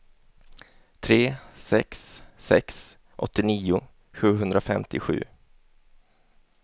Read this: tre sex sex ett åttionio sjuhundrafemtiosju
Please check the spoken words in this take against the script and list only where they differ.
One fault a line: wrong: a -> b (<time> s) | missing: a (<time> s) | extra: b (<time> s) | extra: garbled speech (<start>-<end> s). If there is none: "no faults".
missing: ett (3.0 s)